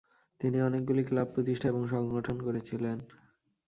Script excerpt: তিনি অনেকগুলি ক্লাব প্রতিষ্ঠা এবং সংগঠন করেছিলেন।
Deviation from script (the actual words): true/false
false